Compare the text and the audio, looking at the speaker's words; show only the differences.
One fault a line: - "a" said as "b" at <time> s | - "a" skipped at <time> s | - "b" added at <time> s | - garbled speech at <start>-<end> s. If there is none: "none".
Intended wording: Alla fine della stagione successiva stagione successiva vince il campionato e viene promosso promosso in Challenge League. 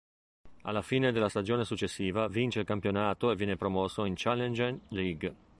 - "stagione successiva" skipped at 2.3 s
- "promosso" skipped at 4.0 s